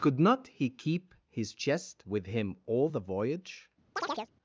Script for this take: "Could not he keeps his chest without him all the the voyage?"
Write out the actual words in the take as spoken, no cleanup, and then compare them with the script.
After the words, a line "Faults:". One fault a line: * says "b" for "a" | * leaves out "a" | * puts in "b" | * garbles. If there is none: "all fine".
"Could not he keep his chest with him all the voyage?"
Faults:
* says "keep" for "keeps"
* says "with" for "without"
* leaves out "the"